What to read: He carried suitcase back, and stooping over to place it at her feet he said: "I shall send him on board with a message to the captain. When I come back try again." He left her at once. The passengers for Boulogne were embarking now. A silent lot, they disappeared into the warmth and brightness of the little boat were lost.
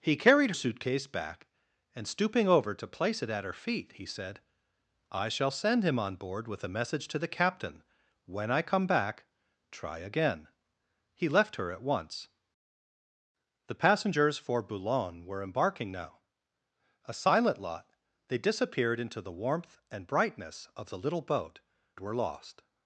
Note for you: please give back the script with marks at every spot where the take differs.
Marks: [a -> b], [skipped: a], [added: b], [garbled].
He carried suitcase back, and stooping over to place it at her feet he said: "I shall send him on board with a message to the captain. When I come back try again." He left her at once. The passengers for Boulogne were embarking now. A silent lot, they disappeared into the warmth and brightness of the little boat were lost.